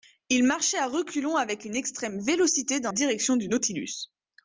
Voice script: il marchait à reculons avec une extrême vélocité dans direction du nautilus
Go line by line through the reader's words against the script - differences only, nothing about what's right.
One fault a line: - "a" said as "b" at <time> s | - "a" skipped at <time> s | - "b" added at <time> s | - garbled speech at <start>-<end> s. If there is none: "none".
none